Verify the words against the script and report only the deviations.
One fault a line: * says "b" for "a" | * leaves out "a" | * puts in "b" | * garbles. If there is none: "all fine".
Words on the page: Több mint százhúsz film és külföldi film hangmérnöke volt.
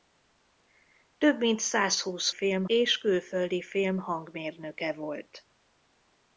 all fine